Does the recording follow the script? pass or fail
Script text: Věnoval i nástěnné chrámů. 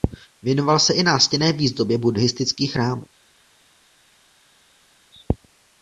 fail